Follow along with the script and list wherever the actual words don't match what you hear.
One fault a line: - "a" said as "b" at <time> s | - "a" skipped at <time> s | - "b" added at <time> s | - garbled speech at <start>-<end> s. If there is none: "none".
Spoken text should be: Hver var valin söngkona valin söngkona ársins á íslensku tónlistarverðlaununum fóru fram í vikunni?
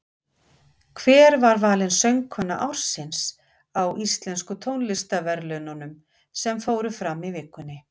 - "valin söngkona" skipped at 2.6 s
- "sem" added at 6.5 s